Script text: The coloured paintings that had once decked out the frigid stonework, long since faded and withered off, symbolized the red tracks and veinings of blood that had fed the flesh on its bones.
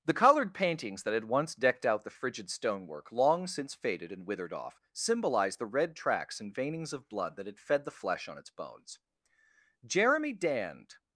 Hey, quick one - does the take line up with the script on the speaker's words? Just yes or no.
no